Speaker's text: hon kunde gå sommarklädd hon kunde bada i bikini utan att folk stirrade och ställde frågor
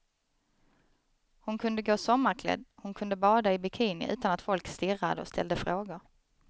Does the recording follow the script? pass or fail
pass